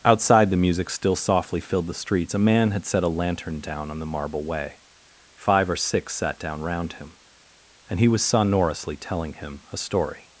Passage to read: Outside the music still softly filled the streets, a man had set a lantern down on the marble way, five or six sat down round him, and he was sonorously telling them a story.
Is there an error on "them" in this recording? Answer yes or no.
yes